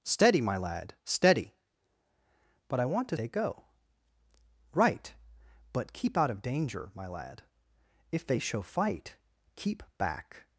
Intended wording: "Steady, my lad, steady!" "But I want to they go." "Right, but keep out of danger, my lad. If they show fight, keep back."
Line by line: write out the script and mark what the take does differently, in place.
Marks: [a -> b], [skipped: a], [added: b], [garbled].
"Steady, my lad, steady!" "But I want to they go." "Right, but keep out of danger, my lad. If they show fight, keep back."